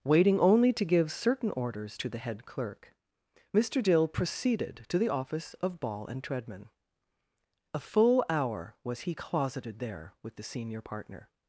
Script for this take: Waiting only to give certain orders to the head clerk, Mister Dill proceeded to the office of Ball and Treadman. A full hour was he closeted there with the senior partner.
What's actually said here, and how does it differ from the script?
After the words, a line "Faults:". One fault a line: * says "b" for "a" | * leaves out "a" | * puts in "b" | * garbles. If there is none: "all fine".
Waiting only to give certain orders to the head clerk, Mister Dill proceeded to the office of Ball and Treadman. A full hour was he closeted there with the senior partner.
Faults:
all fine